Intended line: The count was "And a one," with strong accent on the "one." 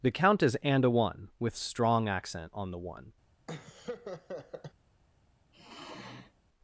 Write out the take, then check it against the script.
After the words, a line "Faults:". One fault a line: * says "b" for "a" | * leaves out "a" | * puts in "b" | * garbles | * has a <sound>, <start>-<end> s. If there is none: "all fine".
The count is "And a one," with strong accent on the "one."
Faults:
* says "is" for "was"
* has a laugh, 3.5-4.7 s
* has a sigh, 5.5-6.3 s